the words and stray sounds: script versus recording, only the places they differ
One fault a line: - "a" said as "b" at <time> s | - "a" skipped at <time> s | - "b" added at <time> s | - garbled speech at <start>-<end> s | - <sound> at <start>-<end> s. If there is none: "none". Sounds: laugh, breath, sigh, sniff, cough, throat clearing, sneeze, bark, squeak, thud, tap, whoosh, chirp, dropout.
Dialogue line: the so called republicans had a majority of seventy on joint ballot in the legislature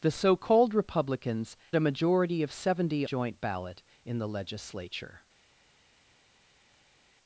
- "had" skipped at 1.6 s
- "on" skipped at 3.1 s